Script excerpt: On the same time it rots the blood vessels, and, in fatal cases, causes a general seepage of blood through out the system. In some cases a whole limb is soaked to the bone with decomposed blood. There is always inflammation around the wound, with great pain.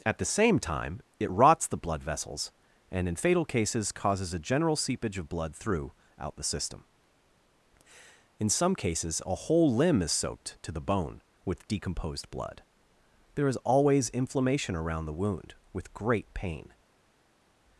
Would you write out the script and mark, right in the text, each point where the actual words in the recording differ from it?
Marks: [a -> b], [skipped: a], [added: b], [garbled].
[On -> At] the same time it rots the blood vessels, and, in fatal cases, causes a general seepage of blood through out the system. In some cases a whole limb is soaked to the bone with decomposed blood. There is always inflammation around the wound, with great pain.